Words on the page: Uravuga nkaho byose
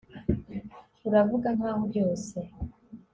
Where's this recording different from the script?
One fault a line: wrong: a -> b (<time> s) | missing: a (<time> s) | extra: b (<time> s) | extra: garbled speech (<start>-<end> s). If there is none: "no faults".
no faults